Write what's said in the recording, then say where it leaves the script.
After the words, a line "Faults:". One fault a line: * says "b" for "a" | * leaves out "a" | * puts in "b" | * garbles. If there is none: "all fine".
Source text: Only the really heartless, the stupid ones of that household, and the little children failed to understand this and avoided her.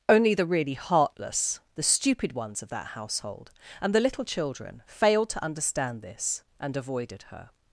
Only the really heartless, the stupid ones of that household, and the little children failed to understand this and avoided her.
Faults:
all fine